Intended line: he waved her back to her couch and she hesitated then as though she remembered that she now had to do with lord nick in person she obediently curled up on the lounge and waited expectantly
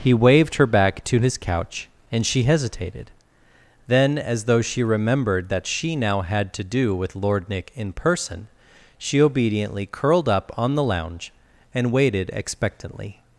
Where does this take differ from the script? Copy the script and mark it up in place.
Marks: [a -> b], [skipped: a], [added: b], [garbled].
he waved her back to [her -> his] couch and she hesitated then as though she remembered that she now had to do with lord nick in person she obediently curled up on the lounge and waited expectantly